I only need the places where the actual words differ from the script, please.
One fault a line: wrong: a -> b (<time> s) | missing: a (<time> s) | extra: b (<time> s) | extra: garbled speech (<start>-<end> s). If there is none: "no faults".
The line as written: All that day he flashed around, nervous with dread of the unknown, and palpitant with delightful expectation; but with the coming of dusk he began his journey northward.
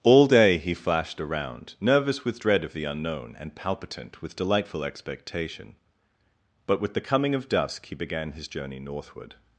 missing: that (0.2 s)